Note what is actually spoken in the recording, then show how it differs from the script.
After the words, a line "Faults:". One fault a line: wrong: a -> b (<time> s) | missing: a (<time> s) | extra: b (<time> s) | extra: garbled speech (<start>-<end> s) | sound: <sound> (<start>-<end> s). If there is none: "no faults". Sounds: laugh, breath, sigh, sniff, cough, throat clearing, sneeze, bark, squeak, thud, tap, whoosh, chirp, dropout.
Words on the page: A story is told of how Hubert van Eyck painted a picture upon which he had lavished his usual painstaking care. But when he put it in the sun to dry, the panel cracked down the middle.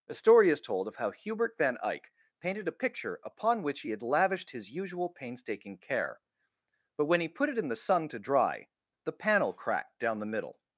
A story is told of how Hubert van Eyck painted a picture upon which he had lavished his usual painstaking care. But when he put it in the sun to dry, the panel cracked down the middle.
Faults:
no faults